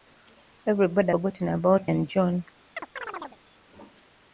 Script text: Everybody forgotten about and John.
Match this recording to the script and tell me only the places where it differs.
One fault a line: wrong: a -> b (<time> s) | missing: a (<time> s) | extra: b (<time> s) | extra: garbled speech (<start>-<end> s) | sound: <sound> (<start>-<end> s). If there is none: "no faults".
sound: chirp (2.8-3.4 s)